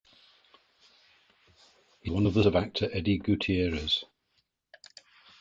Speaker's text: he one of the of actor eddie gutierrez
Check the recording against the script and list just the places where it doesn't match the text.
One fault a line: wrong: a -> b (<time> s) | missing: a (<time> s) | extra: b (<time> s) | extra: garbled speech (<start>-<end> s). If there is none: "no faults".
no faults